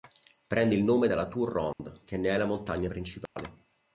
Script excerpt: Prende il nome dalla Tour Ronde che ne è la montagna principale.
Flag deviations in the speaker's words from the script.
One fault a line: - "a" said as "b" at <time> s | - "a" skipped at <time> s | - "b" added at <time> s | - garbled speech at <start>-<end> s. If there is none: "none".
none